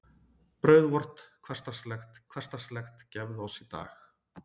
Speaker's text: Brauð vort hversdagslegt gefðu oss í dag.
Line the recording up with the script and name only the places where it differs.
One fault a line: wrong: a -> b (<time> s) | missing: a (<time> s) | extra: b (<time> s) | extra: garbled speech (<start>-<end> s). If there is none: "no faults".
extra: hversdagslegt (2.4 s)